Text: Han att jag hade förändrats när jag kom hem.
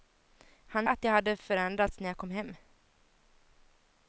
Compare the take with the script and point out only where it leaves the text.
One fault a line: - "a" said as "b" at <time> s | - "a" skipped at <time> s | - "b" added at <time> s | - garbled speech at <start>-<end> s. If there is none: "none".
none